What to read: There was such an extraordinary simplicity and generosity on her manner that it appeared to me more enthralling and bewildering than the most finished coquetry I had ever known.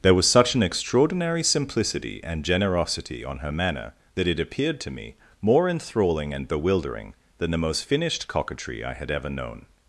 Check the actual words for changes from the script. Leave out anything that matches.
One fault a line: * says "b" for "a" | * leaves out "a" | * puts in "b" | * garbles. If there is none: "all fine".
all fine